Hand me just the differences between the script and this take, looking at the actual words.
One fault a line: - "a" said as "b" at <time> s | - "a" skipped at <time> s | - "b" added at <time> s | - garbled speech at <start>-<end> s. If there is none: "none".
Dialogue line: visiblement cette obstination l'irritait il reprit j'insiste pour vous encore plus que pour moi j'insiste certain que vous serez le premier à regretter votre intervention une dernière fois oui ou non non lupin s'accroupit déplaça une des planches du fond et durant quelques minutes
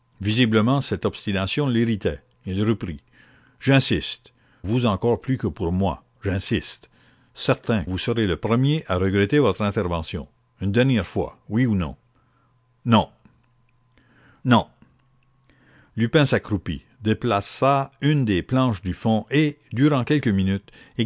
- "pour" skipped at 4.3 s
- "que" skipped at 7.8 s
- "non" added at 14.5 s